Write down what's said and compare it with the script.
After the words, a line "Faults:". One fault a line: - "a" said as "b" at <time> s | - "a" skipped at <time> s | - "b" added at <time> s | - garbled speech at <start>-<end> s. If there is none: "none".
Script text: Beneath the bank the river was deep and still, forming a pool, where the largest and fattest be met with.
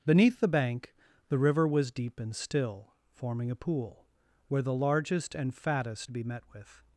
Beneath the bank the river was deep and still, forming a pool, where the largest and fattest be met with.
Faults:
none